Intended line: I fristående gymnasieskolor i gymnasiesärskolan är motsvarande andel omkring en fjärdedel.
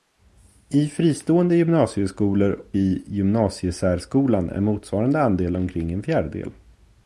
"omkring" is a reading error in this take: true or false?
false